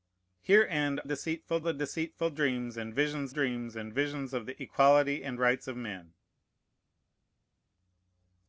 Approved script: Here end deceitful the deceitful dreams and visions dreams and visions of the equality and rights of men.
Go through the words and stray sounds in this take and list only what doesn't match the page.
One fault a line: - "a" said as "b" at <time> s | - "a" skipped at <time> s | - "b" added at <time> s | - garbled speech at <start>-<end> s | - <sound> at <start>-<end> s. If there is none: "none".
none